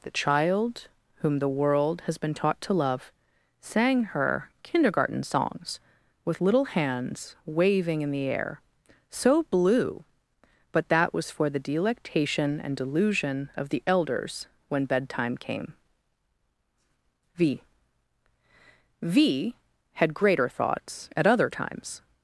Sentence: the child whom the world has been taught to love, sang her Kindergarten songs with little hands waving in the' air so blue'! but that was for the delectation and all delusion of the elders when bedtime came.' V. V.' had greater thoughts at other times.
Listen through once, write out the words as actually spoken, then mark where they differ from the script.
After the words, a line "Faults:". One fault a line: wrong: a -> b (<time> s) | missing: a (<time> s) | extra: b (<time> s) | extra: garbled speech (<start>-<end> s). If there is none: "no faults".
the child whom the world has been taught to love, sang her Kindergarten songs with little hands waving in the' air so blue'! but that was for the delectation and delusion of the elders when bedtime came.' V. V.' had greater thoughts at other times.
Faults:
missing: all (12.8 s)